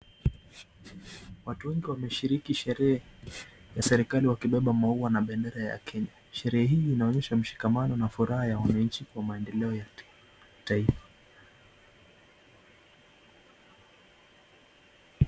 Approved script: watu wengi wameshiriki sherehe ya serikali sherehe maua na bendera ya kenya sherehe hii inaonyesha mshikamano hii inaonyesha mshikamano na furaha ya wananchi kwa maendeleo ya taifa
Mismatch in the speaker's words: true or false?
true